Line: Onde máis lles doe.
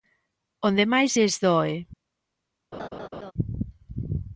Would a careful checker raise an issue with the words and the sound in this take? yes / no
yes